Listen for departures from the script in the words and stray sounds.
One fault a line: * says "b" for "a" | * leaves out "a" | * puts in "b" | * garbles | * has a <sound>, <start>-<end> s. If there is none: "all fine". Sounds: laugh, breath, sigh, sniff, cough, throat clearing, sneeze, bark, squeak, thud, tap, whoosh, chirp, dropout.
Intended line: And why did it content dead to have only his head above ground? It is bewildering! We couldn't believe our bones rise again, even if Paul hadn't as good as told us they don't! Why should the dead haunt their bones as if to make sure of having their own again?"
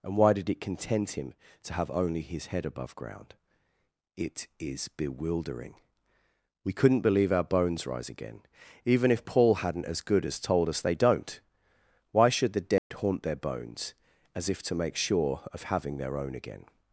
* says "him" for "dead"
* has a dropout, 12.8-12.9 s